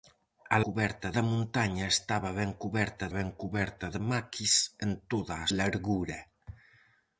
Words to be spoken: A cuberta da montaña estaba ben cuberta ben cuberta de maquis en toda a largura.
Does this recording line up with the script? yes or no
yes